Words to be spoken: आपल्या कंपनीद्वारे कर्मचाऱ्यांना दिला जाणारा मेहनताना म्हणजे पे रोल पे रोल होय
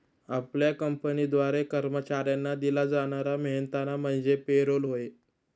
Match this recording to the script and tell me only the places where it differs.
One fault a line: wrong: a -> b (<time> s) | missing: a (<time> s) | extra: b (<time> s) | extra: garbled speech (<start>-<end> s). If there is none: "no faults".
missing: पे रोल (4.8 s)